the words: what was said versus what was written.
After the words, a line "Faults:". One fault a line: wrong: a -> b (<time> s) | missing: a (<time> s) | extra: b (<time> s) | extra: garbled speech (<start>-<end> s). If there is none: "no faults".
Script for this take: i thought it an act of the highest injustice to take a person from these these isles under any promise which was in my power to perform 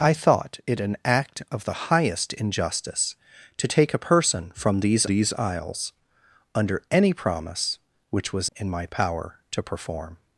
i thought it an act of the highest injustice to take a person from these these isles under any promise which was in my power to perform
Faults:
no faults